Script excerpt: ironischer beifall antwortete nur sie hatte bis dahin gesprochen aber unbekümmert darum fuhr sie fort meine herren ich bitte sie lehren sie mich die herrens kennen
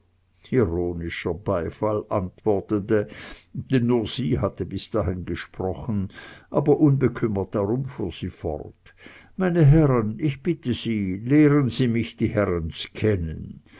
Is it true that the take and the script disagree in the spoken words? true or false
true